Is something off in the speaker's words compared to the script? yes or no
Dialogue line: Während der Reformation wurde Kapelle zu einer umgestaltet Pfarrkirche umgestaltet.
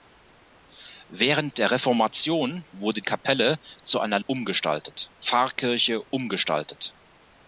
no